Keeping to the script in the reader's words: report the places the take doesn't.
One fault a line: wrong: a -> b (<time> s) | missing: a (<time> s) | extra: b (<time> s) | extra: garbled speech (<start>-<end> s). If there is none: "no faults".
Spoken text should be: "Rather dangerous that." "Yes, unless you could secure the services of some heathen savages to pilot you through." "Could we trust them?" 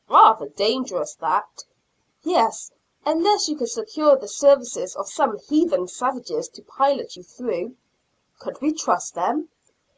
no faults